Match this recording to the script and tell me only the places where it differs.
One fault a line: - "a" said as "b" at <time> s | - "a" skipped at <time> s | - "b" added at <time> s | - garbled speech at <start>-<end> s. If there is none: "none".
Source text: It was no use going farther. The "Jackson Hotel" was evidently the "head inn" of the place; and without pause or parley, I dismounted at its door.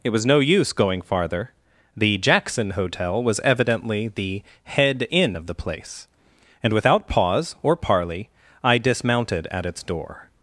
none